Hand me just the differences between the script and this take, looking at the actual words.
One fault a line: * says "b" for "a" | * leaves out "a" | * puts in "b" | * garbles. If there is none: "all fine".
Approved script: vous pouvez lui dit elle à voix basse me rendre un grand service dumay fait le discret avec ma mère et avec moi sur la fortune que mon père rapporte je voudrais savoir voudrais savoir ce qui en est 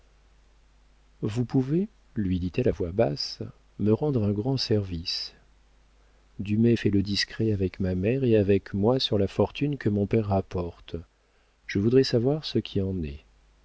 * leaves out "voudrais savoir"